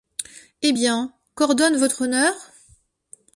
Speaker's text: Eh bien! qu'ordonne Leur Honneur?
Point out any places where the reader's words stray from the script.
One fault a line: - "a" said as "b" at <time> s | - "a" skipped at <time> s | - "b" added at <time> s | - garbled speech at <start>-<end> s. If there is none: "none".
- "Leur" said as "Votre" at 1.8 s